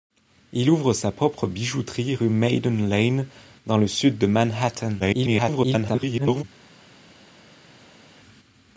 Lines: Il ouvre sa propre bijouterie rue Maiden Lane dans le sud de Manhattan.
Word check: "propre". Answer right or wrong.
right